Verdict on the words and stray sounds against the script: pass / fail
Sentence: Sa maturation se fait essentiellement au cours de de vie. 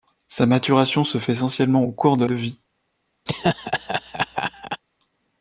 fail